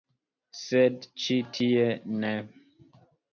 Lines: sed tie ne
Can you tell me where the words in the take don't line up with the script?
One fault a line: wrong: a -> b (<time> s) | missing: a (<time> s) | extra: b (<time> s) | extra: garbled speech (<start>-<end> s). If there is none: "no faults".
extra: ĉi (1.2 s)